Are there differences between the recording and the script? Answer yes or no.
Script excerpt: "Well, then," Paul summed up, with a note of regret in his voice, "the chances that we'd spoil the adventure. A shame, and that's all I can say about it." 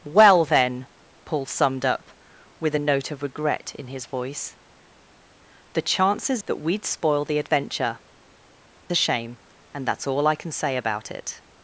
no